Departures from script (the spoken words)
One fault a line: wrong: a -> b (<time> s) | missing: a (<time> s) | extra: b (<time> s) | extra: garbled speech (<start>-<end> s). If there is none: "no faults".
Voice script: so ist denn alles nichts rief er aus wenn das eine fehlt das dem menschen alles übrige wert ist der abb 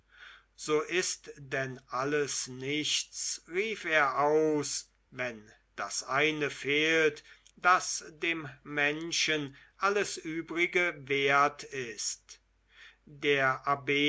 no faults